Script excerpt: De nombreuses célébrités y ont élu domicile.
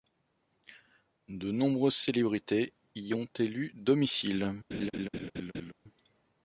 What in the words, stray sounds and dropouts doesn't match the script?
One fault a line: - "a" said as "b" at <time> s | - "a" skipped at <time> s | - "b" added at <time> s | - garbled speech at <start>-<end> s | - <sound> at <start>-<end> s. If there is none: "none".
- laugh at 4.7-5.7 s